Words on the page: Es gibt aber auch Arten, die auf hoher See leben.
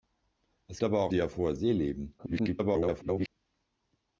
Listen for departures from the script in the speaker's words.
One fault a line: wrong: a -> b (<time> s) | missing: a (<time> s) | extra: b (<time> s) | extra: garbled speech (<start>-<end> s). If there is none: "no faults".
missing: gibt (0.8 s)
missing: Arten (1.1 s)
extra: garbled speech (2.2-3.3 s)